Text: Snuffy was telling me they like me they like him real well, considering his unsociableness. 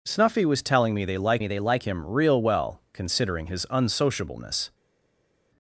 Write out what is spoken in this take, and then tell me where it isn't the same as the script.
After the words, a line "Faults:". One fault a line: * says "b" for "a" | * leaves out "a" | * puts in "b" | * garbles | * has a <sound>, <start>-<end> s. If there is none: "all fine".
Snuffy was telling me they like me they like him real well, considering his unsociableness.
Faults:
all fine